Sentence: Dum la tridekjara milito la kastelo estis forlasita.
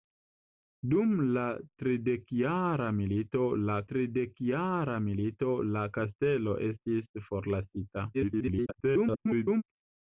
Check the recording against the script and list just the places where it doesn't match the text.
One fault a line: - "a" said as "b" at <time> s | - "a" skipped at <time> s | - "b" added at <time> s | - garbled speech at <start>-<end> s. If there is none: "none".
- "tridekjara milito la" added at 3.9 s
- garbled speech at 8.1-9.6 s